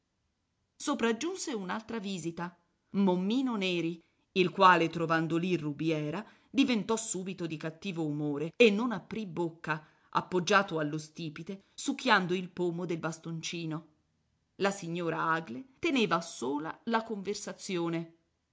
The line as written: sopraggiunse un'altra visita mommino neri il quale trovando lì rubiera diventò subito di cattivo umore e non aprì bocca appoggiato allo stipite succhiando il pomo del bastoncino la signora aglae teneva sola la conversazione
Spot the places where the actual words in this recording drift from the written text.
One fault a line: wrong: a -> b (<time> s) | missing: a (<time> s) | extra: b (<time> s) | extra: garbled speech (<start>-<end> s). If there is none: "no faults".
no faults